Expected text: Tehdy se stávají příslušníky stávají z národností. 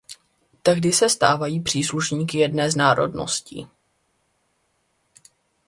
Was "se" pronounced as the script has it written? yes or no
yes